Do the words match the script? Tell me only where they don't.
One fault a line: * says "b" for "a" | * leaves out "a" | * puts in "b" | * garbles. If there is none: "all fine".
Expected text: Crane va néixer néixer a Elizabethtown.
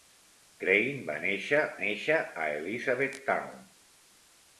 all fine